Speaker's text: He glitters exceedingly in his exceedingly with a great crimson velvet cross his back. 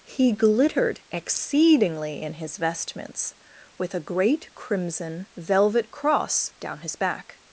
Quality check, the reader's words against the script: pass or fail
fail